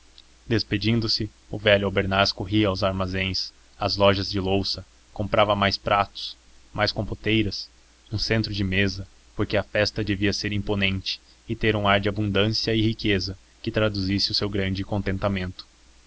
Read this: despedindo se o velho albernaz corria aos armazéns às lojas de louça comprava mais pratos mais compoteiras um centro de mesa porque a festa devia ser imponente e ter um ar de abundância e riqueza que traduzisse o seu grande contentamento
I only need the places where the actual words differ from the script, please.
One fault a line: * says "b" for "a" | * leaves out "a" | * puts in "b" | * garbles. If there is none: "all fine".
all fine